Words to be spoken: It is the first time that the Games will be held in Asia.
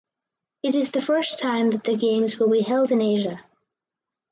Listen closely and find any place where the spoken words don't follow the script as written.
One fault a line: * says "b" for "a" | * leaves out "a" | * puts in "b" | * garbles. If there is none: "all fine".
all fine